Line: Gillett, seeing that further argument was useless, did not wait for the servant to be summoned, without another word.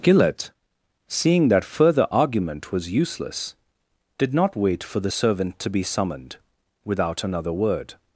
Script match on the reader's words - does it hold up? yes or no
yes